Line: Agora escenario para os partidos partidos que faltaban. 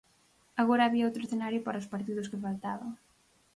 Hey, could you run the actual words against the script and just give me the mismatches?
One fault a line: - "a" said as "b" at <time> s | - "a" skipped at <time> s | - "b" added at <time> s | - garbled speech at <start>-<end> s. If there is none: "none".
- "había outro" added at 0.8 s
- "partidos" skipped at 2.3 s